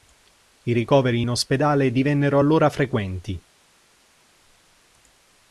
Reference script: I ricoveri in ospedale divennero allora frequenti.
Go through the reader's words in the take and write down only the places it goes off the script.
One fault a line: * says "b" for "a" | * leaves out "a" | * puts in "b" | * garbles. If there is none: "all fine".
all fine